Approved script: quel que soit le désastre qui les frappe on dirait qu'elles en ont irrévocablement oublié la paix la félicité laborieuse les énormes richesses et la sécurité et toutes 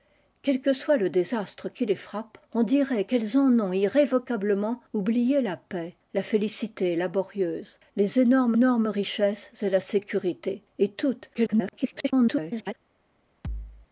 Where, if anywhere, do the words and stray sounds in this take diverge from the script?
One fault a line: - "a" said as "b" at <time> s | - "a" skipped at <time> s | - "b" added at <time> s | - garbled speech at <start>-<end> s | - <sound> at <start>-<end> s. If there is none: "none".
- "énormes" added at 8.5 s
- garbled speech at 11.3-12.7 s
- thud at 13.4-13.9 s